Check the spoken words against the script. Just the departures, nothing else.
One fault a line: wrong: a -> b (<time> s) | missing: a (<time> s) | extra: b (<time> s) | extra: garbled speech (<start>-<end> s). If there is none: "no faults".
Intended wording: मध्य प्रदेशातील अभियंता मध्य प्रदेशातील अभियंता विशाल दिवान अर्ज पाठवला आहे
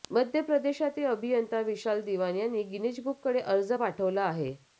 wrong: मध्य प्रदेशातील अभियंता विशाल दिवान -> विशाल दिवान यांनी गिनीज बुककडे (1.6 s)